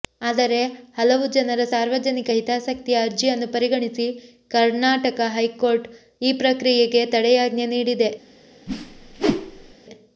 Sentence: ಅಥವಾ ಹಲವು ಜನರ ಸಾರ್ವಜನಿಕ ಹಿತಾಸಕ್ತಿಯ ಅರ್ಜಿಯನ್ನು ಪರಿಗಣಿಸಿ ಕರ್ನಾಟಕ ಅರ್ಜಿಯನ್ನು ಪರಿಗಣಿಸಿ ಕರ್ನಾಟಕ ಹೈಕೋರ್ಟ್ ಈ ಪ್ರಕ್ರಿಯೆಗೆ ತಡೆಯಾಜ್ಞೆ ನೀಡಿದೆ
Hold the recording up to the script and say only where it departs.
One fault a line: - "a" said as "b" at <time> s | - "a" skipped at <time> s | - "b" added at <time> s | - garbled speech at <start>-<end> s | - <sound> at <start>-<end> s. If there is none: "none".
- "ಅಥವಾ" said as "ಆದರೆ" at 0.3 s
- "ಅರ್ಜಿಯನ್ನು ಪರಿಗಣಿಸಿ ಕರ್ನಾಟಕ" skipped at 5.2 s
- whoosh at 8.7-9.8 s